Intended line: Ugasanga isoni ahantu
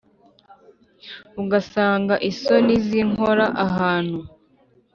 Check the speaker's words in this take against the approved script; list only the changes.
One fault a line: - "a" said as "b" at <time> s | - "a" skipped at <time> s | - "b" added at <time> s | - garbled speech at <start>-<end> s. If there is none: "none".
- "zinkora" added at 2.9 s